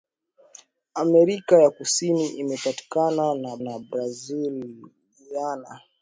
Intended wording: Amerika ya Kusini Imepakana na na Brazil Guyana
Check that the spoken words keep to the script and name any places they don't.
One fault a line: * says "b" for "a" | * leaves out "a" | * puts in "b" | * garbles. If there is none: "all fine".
all fine